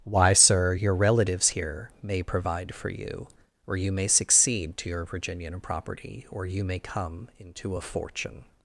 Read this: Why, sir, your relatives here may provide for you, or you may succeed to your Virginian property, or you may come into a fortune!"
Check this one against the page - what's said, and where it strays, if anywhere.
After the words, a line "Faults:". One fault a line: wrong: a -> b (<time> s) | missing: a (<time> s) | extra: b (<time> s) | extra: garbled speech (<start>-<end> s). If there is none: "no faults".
Why, sir, your relatives here may provide for you, or you may succeed to your Virginian property, or you may come into a fortune!"
Faults:
no faults